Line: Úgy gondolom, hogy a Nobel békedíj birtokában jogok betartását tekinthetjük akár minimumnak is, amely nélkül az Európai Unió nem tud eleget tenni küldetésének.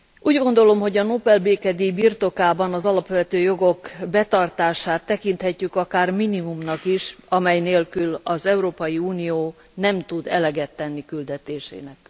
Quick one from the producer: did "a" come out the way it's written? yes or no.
yes